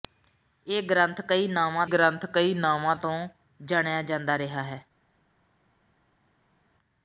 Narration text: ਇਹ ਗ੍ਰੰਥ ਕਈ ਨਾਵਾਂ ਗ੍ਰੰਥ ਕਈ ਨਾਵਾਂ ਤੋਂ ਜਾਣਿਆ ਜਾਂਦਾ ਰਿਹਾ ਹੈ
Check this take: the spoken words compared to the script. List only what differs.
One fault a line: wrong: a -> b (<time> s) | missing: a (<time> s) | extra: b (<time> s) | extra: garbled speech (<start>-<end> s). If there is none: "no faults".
no faults